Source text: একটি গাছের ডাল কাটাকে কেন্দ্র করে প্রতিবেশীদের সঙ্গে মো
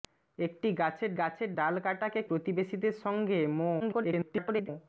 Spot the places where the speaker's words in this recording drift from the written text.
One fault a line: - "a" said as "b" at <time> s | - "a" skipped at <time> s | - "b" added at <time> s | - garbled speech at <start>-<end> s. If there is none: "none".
- "গাছের" added at 1.2 s
- "কেন্দ্র করে" skipped at 2.2 s
- garbled speech at 3.8-4.7 s